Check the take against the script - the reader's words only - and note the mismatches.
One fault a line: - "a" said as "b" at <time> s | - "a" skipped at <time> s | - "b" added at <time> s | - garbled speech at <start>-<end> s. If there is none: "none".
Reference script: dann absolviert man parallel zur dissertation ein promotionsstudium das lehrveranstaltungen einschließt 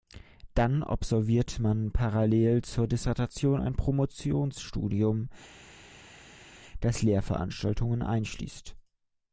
none